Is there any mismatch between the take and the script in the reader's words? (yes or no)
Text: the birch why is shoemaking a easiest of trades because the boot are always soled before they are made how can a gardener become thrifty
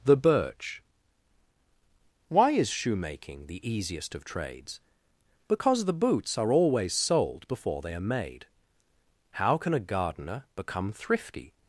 yes